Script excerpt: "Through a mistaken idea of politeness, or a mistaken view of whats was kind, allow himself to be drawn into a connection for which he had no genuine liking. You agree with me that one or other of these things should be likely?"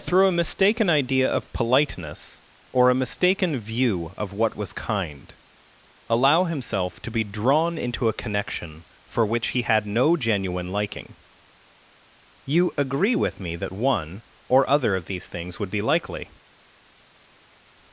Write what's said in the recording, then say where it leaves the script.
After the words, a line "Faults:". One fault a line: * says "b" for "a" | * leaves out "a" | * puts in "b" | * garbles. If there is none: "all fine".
"Through a mistaken idea of politeness, or a mistaken view of what was kind, allow himself to be drawn into a connection for which he had no genuine liking. You agree with me that one or other of these things would be likely?"
Faults:
* says "what" for "whats"
* says "would" for "should"